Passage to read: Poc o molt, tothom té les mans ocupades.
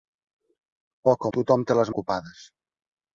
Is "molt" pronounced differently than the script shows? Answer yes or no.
yes